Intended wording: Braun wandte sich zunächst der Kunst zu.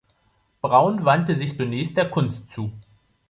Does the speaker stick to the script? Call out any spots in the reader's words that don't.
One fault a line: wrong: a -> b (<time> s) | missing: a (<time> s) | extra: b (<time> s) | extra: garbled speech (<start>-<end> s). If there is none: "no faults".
no faults